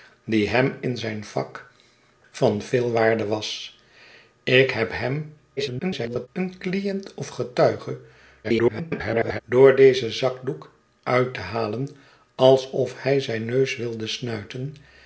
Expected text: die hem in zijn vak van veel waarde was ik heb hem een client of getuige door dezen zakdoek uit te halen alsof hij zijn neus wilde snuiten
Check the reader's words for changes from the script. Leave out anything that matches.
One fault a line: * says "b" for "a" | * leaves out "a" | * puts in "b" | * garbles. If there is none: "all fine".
* garbles
* garbles